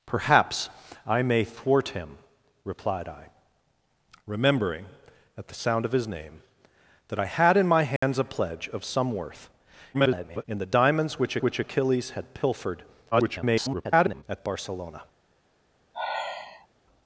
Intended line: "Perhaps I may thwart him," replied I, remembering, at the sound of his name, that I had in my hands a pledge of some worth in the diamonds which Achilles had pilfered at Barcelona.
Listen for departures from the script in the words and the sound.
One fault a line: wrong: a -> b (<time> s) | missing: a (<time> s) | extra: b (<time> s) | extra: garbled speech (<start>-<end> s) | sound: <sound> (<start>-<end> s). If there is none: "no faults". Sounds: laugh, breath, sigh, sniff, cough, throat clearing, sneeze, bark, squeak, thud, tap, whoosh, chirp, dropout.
sound: dropout (8.0-8.0 s)
extra: garbled speech (9.9-10.4 s)
extra: which (11.4 s)
extra: garbled speech (13.1-14.2 s)
sound: sigh (15.9-16.7 s)